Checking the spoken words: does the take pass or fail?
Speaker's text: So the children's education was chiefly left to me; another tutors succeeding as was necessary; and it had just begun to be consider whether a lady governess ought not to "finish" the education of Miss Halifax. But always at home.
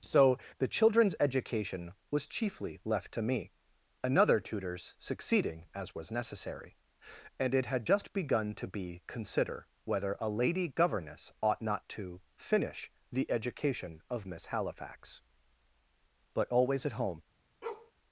pass